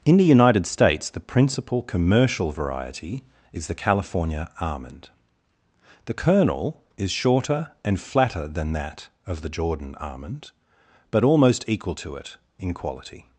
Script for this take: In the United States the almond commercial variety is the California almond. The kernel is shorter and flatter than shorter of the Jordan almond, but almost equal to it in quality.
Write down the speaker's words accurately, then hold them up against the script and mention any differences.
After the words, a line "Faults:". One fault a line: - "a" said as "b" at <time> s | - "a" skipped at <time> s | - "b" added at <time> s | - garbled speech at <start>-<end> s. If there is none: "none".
In the United States the principal commercial variety is the California almond. The kernel is shorter and flatter than that of the Jordan almond, but almost equal to it in quality.
Faults:
- "almond" said as "principal" at 1.2 s
- "shorter" said as "that" at 8.7 s